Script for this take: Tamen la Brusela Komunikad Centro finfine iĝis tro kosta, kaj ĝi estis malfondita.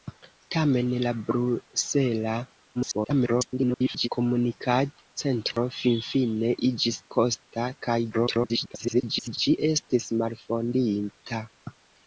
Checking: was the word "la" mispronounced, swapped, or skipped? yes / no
no